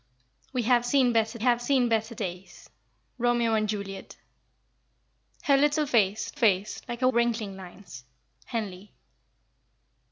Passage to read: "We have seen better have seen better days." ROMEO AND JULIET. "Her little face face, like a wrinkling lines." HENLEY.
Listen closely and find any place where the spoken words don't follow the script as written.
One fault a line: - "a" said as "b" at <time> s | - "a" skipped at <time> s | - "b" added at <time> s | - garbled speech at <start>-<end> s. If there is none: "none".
none